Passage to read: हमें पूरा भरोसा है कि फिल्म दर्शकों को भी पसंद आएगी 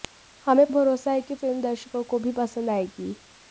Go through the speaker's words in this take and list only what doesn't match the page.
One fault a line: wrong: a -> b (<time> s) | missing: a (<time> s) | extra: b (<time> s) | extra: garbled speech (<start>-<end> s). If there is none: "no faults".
missing: पूरा (0.7 s)